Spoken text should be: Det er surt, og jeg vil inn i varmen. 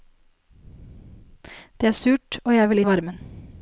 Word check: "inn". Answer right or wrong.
wrong